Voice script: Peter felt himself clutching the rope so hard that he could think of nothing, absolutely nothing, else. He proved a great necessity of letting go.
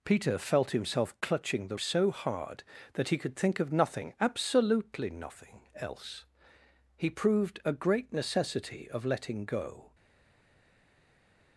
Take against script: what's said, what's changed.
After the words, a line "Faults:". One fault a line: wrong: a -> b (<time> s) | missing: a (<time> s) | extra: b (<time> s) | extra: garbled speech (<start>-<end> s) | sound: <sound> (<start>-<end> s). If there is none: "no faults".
Peter felt himself clutching the so hard that he could think of nothing, absolutely nothing, else. He proved a great necessity of letting go.
Faults:
missing: rope (1.8 s)